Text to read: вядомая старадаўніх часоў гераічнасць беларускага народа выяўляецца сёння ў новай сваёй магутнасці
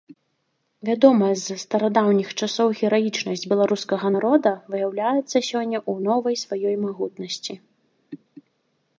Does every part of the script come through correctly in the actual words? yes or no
no